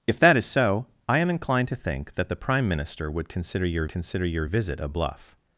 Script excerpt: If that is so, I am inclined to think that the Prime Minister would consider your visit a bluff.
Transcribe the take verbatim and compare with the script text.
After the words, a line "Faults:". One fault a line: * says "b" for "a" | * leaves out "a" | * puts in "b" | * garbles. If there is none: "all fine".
If that is so, I am inclined to think that the Prime Minister would consider your consider your visit a bluff.
Faults:
* puts in "consider your"